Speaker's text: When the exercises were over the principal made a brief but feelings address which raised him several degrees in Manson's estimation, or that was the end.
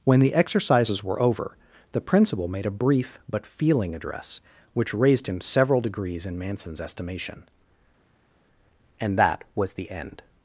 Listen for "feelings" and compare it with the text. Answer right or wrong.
wrong